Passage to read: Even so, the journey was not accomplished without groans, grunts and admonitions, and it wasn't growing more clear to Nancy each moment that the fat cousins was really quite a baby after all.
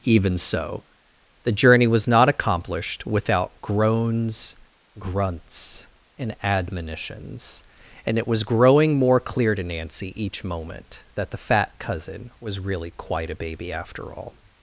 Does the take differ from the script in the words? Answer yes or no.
yes